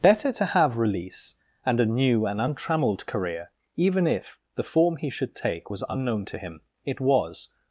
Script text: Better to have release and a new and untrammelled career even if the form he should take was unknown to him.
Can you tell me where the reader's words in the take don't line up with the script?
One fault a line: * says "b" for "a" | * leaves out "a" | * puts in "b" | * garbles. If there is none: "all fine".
* puts in "It was"